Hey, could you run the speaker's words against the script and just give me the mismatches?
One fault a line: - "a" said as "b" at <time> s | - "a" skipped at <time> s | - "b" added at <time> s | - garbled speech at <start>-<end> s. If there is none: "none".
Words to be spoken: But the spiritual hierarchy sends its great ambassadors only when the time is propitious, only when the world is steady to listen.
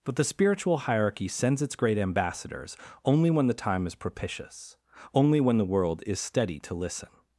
none